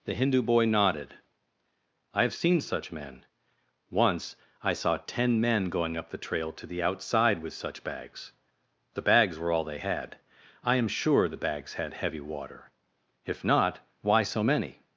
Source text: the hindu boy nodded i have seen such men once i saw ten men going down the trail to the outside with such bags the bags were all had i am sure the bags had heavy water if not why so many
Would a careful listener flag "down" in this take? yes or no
yes